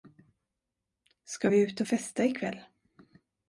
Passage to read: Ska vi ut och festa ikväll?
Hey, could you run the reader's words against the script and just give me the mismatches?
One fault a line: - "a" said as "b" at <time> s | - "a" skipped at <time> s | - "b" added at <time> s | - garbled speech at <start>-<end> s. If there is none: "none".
none